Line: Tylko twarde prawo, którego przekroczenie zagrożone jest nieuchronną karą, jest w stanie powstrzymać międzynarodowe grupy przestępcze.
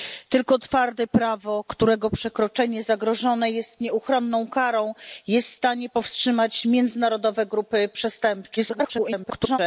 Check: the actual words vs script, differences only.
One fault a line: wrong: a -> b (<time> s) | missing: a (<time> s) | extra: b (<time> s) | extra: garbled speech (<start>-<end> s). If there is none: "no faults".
extra: garbled speech (8.6-9.6 s)